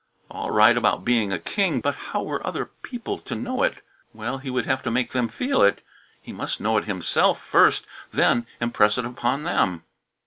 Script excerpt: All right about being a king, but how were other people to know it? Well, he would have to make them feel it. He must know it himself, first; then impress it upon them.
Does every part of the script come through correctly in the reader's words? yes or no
yes